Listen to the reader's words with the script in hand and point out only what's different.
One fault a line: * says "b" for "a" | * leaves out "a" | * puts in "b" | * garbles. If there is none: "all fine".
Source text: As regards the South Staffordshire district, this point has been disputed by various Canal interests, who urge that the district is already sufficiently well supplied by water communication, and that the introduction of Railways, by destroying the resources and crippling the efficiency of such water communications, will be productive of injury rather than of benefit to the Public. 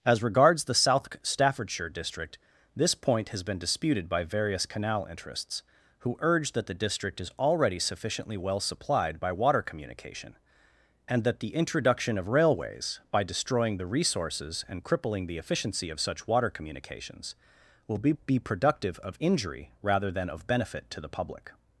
* puts in "be"